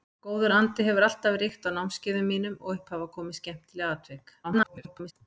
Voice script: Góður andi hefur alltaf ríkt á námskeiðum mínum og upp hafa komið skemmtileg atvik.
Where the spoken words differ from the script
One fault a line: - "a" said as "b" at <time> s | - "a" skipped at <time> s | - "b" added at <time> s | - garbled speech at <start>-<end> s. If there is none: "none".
- garbled speech at 4.4-5.1 s